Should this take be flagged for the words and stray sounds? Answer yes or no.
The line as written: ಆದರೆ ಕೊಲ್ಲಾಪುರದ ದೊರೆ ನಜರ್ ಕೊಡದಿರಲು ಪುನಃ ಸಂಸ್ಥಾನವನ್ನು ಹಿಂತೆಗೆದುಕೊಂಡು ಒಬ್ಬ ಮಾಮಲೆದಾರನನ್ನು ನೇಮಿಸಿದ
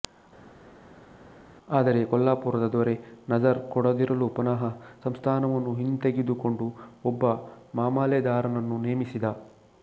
no